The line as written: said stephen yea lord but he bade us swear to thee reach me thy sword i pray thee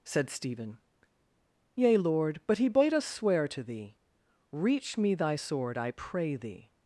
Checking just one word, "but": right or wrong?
right